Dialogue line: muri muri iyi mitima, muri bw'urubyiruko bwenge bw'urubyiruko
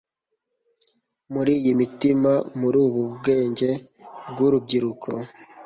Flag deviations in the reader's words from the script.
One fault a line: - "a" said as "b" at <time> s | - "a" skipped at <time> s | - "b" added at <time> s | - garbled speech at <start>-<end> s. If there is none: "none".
- "muri" skipped at 1.5 s
- "bw'urubyiruko" said as "ubu" at 2.9 s